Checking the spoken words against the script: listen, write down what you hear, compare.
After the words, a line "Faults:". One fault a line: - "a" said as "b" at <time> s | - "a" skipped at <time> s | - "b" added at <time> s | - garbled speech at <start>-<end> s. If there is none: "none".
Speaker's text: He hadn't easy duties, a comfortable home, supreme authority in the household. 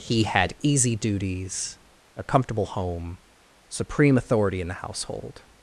He had easy duties, a comfortable home, supreme authority in the household.
Faults:
- "hadn't" said as "had" at 0.2 s